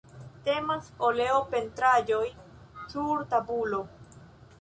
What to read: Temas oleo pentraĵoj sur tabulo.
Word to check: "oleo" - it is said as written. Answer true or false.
true